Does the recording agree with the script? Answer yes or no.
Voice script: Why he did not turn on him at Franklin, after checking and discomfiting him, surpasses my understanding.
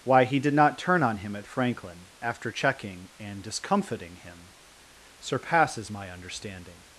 yes